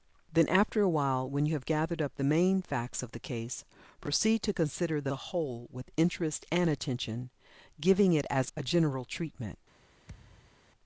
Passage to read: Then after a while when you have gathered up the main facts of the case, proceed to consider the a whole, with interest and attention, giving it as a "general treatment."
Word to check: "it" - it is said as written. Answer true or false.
true